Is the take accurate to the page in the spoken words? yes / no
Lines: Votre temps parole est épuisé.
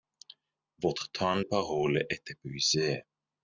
yes